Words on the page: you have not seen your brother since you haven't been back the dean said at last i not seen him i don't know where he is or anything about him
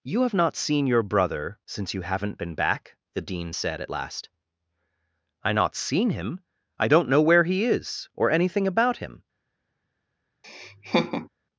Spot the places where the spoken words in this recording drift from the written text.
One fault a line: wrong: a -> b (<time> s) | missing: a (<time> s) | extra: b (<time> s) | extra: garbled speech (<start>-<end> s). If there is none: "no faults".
no faults